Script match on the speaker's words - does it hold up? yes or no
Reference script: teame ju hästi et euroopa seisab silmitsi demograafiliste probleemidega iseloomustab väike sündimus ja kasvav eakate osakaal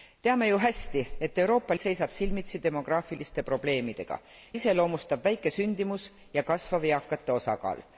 yes